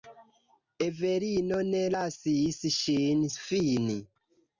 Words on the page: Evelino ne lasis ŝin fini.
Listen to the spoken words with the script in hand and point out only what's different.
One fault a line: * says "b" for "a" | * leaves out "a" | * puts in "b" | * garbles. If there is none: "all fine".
all fine